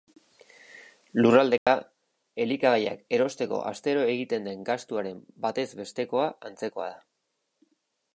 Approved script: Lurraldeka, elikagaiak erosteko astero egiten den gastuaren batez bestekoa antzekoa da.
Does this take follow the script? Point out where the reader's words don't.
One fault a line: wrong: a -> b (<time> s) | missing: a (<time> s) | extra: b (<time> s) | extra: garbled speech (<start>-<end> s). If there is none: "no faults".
no faults